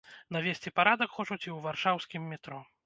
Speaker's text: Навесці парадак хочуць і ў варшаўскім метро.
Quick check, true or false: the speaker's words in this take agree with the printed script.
true